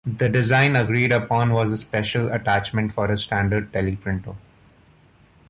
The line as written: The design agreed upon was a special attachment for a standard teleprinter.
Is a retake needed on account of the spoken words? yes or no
no